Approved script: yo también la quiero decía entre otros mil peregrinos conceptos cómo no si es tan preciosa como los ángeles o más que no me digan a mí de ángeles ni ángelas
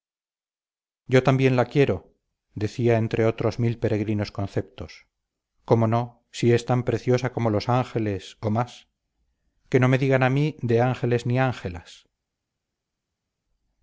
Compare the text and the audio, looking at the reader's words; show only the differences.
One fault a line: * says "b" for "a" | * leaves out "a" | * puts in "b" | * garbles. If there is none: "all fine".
all fine